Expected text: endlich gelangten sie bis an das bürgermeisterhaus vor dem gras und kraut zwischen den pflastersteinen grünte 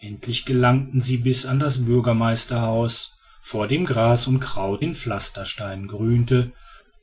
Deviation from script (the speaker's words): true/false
true